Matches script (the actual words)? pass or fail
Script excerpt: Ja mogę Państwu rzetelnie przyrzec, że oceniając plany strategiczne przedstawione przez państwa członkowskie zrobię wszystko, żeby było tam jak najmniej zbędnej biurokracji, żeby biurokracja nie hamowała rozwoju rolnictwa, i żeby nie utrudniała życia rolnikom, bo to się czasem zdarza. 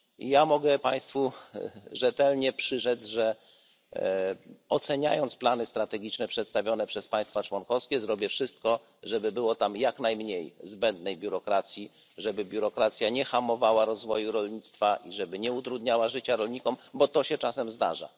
pass